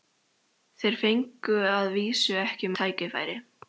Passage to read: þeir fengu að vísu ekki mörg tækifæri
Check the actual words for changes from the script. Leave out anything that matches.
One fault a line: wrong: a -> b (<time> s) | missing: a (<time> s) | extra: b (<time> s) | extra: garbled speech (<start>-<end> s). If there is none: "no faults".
missing: mörg (2.7 s)